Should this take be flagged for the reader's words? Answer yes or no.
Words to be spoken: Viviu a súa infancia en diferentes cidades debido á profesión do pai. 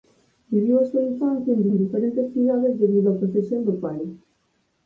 yes